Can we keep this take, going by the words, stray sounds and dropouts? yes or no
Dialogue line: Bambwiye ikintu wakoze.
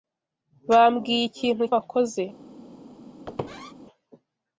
no